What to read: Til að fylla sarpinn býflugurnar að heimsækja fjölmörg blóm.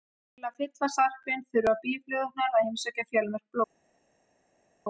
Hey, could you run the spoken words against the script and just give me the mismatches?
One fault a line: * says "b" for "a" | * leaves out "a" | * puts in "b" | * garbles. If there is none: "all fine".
* puts in "þurfa"